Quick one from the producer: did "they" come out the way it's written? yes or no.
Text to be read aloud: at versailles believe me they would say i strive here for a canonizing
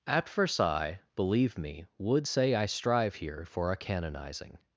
no